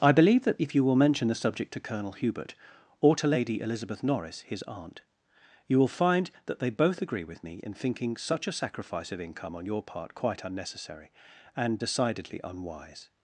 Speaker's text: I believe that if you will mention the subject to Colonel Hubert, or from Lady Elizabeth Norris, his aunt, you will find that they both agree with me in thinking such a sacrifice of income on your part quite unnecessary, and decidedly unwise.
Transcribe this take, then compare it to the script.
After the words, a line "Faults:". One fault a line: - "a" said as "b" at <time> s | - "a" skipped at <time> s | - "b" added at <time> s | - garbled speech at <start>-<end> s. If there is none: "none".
I believe that if you will mention the subject to Colonel Hubert, or to Lady Elizabeth Norris, his aunt, you will find that they both agree with me in thinking such a sacrifice of income on your part quite unnecessary, and decidedly unwise.
Faults:
- "from" said as "to" at 3.2 s